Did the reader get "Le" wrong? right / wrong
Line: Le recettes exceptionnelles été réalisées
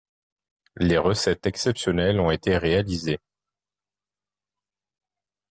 wrong